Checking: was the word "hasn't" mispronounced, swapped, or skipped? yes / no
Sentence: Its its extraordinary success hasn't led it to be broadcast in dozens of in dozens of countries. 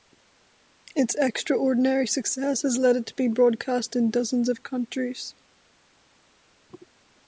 yes